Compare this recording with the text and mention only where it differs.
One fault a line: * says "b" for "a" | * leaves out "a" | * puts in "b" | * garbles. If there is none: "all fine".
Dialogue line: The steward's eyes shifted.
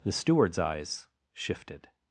all fine